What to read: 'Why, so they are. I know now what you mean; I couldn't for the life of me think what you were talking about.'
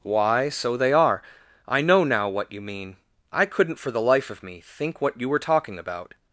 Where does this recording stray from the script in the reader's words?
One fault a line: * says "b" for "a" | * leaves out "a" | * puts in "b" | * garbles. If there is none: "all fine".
all fine